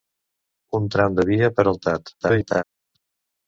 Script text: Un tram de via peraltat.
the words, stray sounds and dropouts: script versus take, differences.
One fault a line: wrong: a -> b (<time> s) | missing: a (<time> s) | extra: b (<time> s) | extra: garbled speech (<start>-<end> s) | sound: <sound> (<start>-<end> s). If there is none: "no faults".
extra: garbled speech (2.2-2.6 s)